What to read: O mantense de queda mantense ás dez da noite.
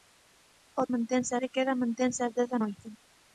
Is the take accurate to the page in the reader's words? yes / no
yes